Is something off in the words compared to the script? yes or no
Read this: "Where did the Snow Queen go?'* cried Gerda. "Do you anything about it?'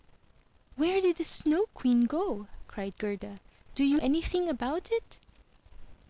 no